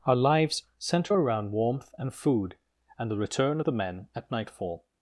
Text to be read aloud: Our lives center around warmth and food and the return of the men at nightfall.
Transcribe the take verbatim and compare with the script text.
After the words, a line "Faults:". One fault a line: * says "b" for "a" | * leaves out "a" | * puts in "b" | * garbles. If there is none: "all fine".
Our lives center around warmth and food and the return of the men at nightfall.
Faults:
all fine